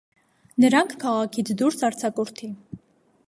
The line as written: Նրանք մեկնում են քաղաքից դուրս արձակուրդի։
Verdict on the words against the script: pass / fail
fail